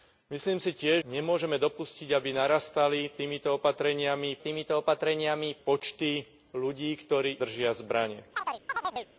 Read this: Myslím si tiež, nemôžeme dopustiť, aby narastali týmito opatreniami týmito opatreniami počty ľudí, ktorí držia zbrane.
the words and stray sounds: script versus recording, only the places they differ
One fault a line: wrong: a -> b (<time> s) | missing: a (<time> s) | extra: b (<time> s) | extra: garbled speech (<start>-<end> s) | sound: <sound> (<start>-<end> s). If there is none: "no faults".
sound: chirp (8.3-9.1 s)